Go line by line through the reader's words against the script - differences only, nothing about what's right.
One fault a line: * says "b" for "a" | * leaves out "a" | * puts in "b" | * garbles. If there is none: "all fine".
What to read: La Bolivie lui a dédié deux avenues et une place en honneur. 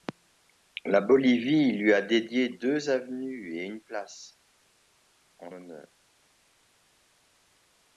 all fine